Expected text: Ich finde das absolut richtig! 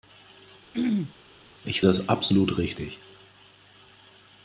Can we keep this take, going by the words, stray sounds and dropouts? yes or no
no